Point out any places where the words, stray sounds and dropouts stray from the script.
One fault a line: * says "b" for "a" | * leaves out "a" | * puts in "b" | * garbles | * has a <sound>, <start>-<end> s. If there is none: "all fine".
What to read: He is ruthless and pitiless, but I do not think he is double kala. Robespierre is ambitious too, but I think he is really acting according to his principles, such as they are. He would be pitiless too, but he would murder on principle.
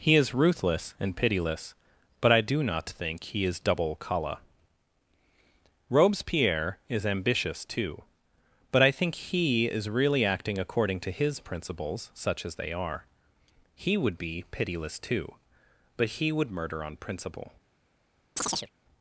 * has a chirp, 18.4-18.7 s